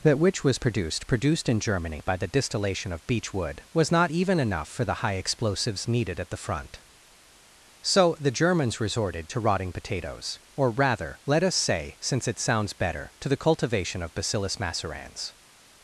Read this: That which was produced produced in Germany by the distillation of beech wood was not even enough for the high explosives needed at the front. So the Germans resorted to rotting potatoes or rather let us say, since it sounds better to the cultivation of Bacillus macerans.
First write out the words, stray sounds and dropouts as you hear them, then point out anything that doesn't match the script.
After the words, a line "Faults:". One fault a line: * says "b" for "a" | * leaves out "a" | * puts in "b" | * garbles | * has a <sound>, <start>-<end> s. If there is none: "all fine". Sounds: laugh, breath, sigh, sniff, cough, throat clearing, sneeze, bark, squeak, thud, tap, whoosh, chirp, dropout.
That which was produced produced in Germany by the distillation of beech wood was not even enough for the high explosives needed at the front. So the Germans resorted to rotting potatoes or rather let us say, since it sounds better to the cultivation of Bacillus macerans.
Faults:
all fine